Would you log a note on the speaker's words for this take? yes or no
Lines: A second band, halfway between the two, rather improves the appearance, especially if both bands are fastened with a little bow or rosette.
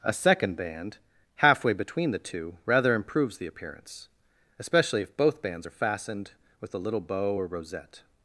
no